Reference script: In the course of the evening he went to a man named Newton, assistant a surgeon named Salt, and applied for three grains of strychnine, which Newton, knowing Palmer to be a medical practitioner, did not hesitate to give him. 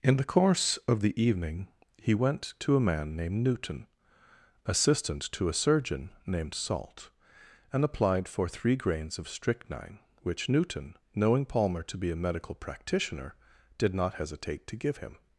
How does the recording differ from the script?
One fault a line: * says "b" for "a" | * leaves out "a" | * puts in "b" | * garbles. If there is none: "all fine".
* puts in "to"